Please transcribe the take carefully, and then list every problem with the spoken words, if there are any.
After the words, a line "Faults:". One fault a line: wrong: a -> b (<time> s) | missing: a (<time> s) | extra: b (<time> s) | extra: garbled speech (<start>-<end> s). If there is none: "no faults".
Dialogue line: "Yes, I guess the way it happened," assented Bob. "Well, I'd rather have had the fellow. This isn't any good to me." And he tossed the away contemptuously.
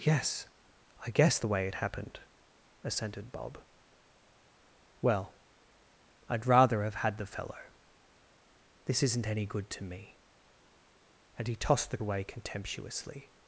"Yes, I guess the way it happened," assented Bob. "Well, I'd rather have had the fellow. This isn't any good to me." And he tossed the away contemptuously.
Faults:
no faults